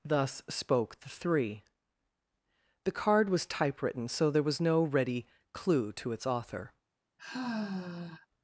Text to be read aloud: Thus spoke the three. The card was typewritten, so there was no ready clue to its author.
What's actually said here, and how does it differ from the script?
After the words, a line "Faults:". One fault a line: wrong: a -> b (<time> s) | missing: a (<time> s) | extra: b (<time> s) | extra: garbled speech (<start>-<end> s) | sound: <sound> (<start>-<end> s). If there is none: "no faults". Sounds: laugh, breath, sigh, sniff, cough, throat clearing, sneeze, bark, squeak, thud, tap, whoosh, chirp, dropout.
Thus spoke the three. The card was typewritten, so there was no ready clue to its author.
Faults:
sound: sigh (7.2-8.3 s)